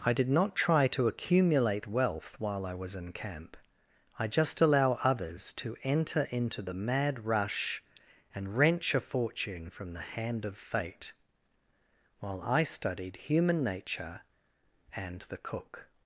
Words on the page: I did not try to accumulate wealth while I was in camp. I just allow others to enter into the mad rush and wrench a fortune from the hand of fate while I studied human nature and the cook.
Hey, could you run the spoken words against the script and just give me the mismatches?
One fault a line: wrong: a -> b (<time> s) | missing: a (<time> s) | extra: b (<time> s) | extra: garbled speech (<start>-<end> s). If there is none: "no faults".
no faults